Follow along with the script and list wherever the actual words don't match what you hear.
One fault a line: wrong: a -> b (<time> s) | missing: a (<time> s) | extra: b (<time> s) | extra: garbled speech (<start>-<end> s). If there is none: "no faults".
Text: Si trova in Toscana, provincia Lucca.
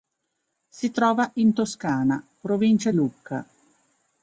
no faults